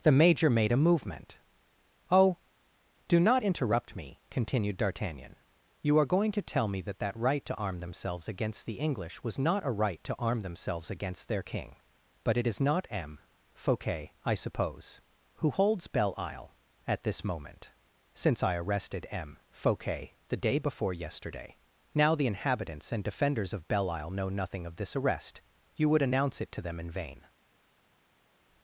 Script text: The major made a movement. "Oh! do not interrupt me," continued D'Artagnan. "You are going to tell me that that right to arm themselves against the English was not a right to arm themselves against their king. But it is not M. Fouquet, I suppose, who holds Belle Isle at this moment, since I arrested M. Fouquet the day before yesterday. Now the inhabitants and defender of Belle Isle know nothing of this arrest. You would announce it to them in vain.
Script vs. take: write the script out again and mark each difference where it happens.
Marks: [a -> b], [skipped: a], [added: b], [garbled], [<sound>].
The major made a movement. "Oh! do not interrupt me," continued D'Artagnan. "You are going to tell me that that right to arm themselves against the English was not a right to arm themselves against their king. But it is not M. Fouquet, I suppose, who holds Belle Isle at this moment, since I arrested M. Fouquet the day before yesterday. Now the inhabitants and [defender -> defenders] of Belle Isle know nothing of this arrest. You would announce it to them in vain.